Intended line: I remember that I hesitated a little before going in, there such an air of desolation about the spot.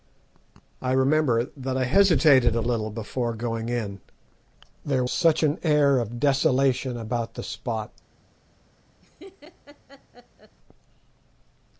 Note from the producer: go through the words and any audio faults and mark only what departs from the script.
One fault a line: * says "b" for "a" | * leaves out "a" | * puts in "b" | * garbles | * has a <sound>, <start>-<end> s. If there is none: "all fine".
* has a laugh, 9.0-10.6 s